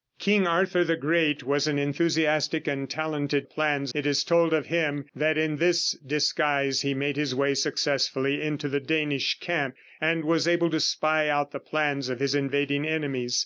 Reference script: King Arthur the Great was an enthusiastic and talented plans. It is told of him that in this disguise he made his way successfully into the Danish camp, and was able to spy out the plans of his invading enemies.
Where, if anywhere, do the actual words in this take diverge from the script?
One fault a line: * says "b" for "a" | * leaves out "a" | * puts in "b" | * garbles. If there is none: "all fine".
all fine